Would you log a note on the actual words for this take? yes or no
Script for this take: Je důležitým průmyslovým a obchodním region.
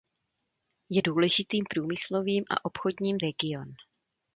no